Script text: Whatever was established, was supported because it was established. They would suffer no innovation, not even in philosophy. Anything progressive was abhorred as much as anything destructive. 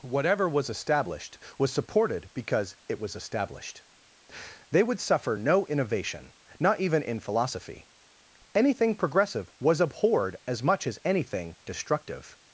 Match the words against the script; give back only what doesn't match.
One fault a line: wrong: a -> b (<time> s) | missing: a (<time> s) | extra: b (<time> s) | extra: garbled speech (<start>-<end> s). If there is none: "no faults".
no faults